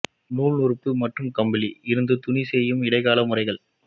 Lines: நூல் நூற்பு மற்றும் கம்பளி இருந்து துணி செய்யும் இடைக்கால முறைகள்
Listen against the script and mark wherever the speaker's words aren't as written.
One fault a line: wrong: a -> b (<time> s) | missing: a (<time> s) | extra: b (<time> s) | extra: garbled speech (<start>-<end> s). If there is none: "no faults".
no faults